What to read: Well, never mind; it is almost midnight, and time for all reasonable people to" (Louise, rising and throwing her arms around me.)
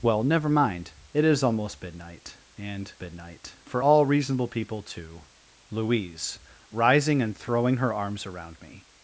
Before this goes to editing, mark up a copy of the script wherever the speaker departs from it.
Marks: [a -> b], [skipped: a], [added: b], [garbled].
Well, never mind; it is almost midnight, and [time -> midnight] for all reasonable people to" (Louise, rising and throwing her arms around me.)